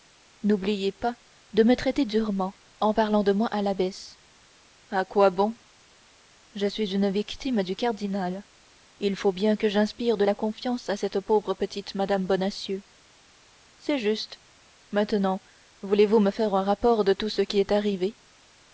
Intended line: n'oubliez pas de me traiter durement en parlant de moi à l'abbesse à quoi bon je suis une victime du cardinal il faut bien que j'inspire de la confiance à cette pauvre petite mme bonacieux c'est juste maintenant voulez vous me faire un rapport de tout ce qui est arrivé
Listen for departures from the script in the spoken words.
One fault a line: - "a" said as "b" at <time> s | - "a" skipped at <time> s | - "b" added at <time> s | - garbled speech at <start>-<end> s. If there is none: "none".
none